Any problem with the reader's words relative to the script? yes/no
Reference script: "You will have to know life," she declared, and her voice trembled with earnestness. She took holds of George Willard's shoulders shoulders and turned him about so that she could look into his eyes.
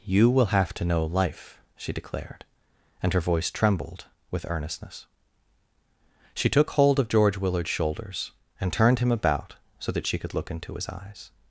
yes